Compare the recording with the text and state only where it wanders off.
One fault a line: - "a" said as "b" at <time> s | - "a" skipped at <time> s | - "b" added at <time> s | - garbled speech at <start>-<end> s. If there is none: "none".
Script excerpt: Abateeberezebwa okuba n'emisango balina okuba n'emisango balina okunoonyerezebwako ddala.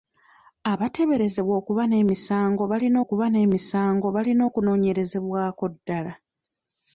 none